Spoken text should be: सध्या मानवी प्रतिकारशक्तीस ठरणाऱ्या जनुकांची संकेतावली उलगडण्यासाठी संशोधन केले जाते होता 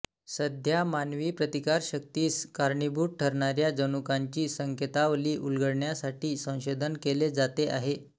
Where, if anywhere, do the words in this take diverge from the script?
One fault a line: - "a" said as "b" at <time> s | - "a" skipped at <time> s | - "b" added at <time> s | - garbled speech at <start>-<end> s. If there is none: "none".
- "कारणीभूत" added at 2.5 s
- "होता" said as "आहे" at 7.7 s